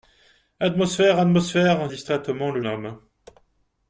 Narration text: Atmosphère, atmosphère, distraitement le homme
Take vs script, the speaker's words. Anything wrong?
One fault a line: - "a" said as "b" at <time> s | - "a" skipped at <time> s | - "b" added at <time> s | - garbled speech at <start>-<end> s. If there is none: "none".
none